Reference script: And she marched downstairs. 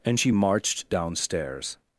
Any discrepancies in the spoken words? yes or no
no